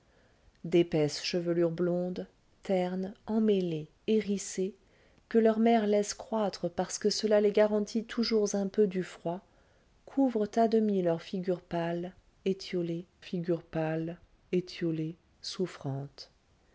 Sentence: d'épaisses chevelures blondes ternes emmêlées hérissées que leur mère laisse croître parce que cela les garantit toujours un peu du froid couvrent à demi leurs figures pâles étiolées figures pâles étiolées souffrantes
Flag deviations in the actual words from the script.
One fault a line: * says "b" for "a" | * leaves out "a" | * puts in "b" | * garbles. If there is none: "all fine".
all fine